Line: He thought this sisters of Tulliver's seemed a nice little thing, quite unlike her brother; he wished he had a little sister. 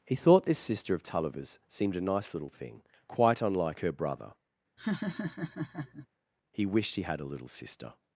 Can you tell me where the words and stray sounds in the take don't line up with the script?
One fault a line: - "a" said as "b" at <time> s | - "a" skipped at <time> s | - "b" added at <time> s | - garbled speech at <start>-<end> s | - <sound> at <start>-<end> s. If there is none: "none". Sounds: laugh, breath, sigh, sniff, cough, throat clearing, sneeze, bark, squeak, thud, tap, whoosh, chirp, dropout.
- "sisters" said as "sister" at 0.6 s
- laugh at 4.8-6.1 s